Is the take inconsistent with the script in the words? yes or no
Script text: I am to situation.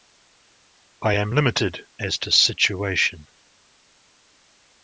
yes